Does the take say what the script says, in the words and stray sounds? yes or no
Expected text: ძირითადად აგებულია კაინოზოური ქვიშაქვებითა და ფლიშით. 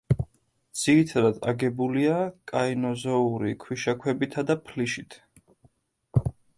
yes